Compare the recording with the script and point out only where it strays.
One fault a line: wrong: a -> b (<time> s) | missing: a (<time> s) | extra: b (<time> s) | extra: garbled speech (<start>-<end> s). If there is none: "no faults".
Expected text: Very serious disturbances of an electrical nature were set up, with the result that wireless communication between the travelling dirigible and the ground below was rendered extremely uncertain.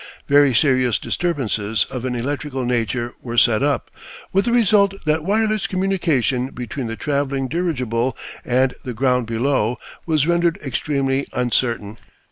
no faults